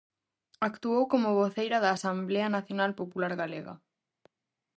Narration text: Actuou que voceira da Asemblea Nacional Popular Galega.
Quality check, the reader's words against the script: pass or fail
fail